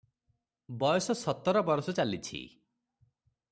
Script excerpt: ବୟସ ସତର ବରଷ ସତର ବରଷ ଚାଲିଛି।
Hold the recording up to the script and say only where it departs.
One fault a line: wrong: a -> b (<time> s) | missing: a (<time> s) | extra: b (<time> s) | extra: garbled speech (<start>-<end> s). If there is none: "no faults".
missing: ସତର ବରଷ (1.9 s)